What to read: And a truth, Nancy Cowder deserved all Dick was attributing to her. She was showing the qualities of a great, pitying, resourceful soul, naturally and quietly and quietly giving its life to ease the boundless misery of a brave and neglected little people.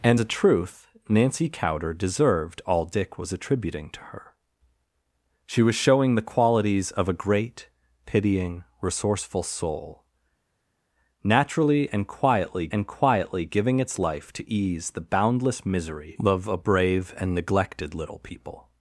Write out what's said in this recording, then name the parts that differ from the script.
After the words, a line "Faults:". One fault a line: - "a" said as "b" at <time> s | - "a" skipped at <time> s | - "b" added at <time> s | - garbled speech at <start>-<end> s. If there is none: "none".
And a truth, Nancy Cowder deserved all Dick was attributing to her. She was showing the qualities of a great, pitying, resourceful soul, naturally and quietly and quietly giving its life to ease the boundless misery of a brave and neglected little people.
Faults:
none